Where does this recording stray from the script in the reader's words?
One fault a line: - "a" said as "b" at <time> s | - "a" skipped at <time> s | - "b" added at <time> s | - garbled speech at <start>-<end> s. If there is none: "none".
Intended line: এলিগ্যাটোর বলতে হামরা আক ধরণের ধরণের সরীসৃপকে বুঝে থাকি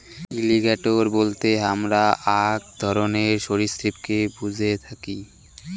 - "ধরণের" skipped at 3.3 s